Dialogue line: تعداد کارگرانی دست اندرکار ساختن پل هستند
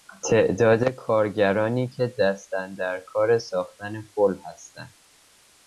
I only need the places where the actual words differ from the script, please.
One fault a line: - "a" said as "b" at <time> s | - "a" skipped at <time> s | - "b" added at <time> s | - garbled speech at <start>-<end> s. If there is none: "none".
- "که" added at 1.9 s